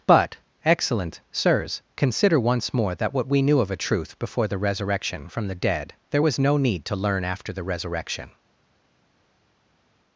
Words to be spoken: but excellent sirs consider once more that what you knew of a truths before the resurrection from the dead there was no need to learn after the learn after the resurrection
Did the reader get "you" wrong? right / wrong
wrong